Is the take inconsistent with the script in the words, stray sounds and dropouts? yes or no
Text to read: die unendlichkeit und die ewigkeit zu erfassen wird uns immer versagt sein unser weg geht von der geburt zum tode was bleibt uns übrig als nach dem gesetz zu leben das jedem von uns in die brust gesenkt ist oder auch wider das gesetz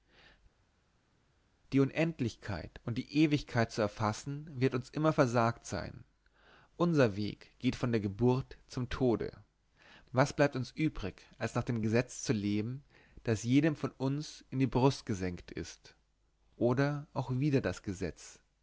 no